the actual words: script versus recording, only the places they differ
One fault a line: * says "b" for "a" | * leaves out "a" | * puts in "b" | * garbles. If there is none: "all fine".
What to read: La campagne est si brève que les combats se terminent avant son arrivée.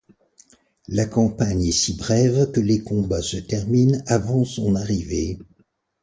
all fine